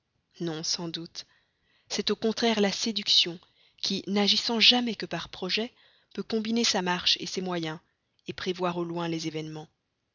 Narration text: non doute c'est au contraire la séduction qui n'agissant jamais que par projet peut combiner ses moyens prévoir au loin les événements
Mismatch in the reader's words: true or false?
true